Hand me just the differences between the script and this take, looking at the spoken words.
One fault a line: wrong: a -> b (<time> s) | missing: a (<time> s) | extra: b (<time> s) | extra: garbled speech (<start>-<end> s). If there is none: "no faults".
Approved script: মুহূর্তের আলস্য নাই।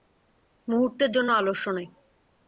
extra: জন্য (1.1 s)